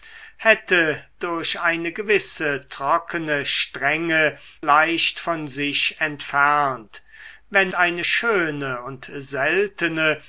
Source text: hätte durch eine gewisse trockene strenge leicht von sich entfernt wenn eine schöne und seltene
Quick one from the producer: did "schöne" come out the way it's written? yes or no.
yes